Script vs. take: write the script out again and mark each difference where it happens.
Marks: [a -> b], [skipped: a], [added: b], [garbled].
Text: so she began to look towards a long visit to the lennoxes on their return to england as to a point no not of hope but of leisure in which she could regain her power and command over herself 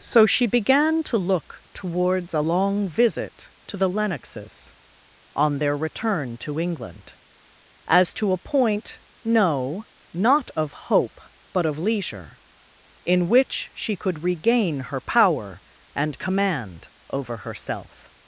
so she began to look towards a long visit to the lennoxes on their return to england as to a point no not of hope but of leisure in which she could regain her power and command over herself